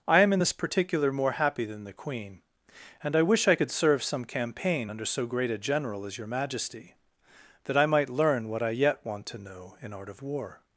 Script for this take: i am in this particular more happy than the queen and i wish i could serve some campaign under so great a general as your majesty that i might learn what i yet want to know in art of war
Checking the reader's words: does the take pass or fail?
pass